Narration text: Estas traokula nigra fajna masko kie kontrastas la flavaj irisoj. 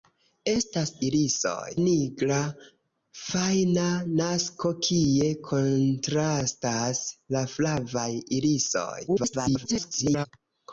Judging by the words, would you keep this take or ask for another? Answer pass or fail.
fail